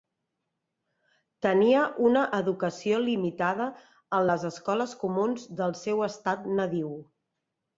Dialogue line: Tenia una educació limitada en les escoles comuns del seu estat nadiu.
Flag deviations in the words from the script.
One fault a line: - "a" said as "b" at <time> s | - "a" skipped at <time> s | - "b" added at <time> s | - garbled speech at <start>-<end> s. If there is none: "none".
none